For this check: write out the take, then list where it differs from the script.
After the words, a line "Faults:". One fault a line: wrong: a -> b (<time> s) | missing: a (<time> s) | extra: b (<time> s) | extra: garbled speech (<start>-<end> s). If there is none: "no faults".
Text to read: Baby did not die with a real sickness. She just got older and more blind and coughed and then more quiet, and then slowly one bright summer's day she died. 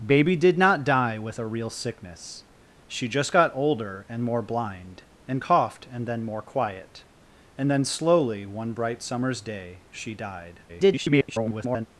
Baby did not die with a real sickness. She just got older and more blind and coughed and then more quiet, and then slowly one bright summer's day she died. [garbled]
Faults:
extra: garbled speech (10.7-11.9 s)